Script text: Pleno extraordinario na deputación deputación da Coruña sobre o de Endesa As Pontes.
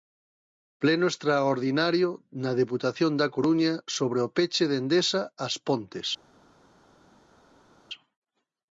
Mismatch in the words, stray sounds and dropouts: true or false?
true